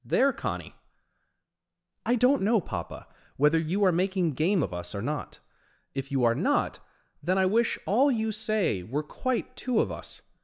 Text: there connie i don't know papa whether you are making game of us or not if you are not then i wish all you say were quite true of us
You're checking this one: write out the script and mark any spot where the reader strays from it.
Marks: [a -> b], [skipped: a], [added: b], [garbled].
there connie i don't know papa whether you are making game of us or not if you are not then i wish all you say were quite [true -> two] of us